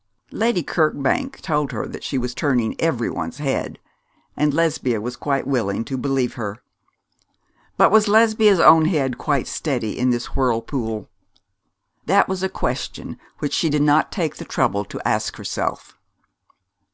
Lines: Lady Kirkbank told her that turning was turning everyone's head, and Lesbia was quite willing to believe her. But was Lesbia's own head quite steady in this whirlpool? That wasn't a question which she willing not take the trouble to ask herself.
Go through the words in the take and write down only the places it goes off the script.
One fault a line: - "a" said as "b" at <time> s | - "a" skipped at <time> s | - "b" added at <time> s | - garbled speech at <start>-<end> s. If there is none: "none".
- "turning" said as "she" at 2.0 s
- "wasn't" said as "was" at 12.3 s
- "willing" said as "did" at 13.7 s